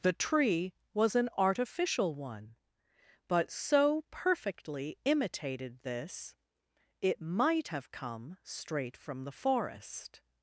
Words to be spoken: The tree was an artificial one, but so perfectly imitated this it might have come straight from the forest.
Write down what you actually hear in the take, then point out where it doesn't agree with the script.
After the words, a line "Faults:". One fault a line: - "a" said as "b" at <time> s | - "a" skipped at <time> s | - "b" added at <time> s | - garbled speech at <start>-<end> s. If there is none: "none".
The tree was an artificial one, but so perfectly imitated this it might have come straight from the forest.
Faults:
none